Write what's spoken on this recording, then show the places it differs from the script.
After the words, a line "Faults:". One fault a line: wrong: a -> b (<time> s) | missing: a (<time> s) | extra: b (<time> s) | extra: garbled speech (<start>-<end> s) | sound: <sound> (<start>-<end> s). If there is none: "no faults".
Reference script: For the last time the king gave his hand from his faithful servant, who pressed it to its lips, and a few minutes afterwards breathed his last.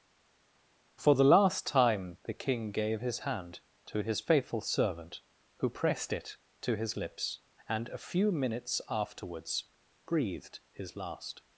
For the last time the king gave his hand to his faithful servant, who pressed it to his lips, and a few minutes afterwards breathed his last.
Faults:
wrong: from -> to (3.8 s)
wrong: its -> his (6.7 s)